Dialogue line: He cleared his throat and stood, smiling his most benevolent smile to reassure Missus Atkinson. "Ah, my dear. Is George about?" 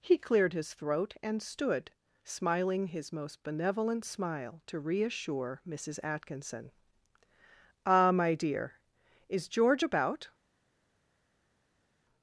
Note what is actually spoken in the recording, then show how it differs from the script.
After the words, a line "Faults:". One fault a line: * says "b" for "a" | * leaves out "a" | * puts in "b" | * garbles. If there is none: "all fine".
He cleared his throat and stood, smiling his most benevolent smile to reassure Missus Atkinson. "Ah, my dear. Is George about?"
Faults:
all fine